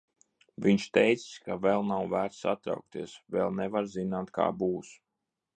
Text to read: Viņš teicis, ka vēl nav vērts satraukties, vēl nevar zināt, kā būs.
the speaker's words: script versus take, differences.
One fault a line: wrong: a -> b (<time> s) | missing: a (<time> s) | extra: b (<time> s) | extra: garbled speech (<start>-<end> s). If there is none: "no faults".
no faults